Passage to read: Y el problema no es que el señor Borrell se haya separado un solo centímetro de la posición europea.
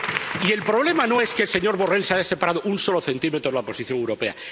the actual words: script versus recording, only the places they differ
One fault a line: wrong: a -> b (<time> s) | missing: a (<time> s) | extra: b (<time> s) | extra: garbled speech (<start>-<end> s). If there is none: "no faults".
no faults